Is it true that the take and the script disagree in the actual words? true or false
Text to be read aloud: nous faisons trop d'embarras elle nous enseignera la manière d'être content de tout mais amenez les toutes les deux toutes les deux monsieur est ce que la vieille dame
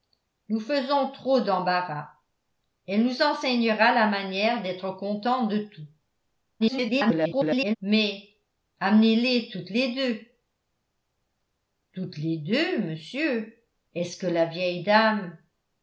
true